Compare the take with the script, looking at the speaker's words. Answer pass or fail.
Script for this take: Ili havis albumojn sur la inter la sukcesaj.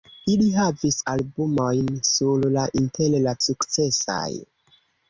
pass